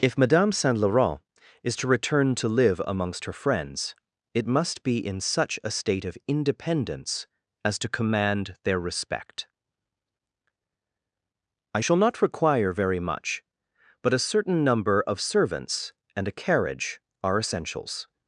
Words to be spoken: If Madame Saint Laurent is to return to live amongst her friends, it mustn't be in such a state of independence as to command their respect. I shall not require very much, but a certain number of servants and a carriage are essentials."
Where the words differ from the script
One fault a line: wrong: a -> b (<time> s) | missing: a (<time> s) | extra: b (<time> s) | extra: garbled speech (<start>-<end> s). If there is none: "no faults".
wrong: mustn't -> must (4.5 s)